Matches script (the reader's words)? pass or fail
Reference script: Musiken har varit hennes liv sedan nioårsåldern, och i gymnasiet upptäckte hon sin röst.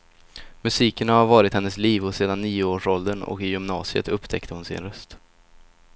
pass